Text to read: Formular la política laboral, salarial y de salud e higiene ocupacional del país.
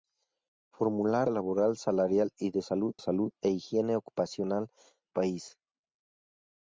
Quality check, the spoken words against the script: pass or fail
fail